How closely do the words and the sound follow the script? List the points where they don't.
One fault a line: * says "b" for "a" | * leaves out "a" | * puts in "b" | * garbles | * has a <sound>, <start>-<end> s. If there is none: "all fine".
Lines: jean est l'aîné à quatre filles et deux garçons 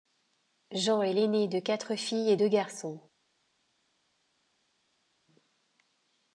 * says "de" for "à"